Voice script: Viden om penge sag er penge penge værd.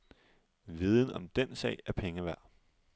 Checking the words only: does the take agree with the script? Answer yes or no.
no